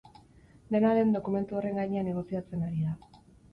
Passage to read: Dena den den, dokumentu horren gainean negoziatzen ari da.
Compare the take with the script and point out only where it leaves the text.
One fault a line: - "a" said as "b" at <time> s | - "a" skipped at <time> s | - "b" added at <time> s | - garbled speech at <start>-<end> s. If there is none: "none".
- "den" skipped at 1.1 s